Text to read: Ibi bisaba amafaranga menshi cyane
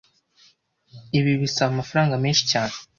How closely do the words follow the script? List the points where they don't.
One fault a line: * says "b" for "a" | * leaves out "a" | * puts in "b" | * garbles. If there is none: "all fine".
all fine